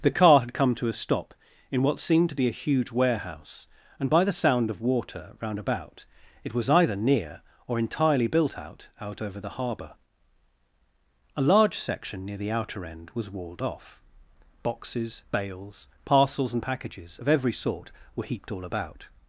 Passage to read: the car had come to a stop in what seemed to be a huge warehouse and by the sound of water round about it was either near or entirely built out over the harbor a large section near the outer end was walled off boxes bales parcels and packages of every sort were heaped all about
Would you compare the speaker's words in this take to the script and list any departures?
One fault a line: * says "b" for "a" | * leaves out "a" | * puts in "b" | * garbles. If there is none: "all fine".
* puts in "out"